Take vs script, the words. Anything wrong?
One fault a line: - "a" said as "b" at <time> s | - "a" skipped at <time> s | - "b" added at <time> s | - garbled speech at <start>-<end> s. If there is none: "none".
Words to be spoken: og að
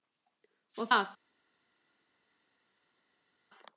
none